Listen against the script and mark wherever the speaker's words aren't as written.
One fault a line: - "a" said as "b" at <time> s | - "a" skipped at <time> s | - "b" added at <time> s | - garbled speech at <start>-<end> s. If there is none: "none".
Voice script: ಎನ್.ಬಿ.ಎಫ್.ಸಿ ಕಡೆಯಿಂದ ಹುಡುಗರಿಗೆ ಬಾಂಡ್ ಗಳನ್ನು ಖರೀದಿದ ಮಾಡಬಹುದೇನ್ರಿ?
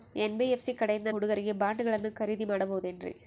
none